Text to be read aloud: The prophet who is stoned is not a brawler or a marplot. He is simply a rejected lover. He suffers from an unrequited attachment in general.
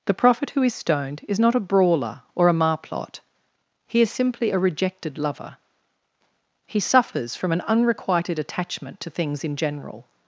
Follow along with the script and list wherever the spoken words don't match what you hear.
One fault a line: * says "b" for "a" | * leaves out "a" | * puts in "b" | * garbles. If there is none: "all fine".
* puts in "to things"